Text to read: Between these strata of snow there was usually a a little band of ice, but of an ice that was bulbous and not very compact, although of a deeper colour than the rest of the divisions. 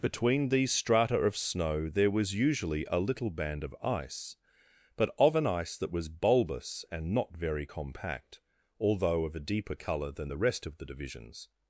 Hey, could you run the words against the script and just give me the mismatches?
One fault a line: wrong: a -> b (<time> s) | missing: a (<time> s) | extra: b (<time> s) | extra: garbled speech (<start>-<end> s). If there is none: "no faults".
missing: a (3.0 s)